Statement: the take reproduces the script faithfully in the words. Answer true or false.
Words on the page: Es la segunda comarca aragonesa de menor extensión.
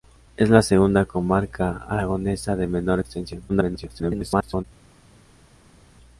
false